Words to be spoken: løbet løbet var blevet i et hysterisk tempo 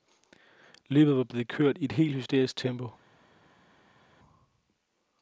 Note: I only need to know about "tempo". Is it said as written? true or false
true